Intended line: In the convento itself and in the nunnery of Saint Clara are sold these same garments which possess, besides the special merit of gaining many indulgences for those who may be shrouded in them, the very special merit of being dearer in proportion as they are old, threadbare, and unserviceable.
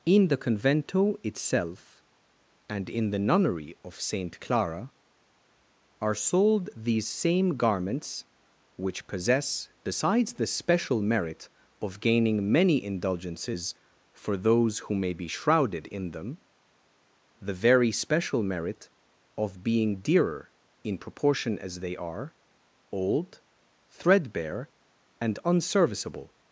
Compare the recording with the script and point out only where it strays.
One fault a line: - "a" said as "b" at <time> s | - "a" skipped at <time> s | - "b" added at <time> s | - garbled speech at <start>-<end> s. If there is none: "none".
none